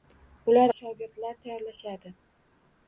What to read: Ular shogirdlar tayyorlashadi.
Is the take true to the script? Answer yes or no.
yes